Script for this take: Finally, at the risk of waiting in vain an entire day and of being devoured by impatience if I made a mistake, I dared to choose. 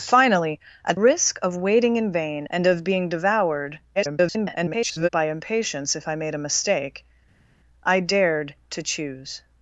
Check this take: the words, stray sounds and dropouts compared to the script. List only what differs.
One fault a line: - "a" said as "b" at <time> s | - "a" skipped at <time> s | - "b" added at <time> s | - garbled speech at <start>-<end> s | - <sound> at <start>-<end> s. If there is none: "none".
- "the" skipped at 1.0 s
- "an entire day" skipped at 2.5 s
- garbled speech at 3.9-5.1 s